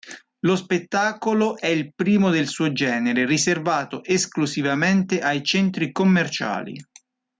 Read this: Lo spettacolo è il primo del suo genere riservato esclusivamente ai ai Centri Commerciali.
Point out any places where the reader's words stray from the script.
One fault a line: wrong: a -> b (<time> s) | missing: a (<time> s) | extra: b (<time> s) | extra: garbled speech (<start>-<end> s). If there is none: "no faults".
missing: ai (5.4 s)